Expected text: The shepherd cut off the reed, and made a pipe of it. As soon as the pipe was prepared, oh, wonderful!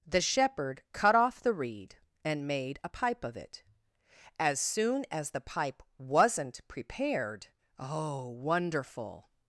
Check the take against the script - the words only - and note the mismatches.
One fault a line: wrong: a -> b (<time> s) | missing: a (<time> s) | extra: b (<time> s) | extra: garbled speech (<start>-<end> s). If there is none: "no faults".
wrong: was -> wasn't (6.0 s)